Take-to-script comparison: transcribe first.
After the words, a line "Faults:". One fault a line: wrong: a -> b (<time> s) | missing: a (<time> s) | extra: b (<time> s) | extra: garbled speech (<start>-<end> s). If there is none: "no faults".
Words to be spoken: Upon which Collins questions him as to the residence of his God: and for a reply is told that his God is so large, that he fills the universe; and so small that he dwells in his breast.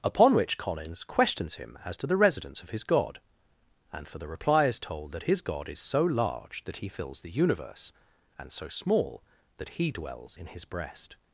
Upon which Collins questions him as to the residence of his God: and for the reply is told that his God is so large, that he fills the universe; and so small that he dwells in his breast.
Faults:
wrong: a -> the (4.2 s)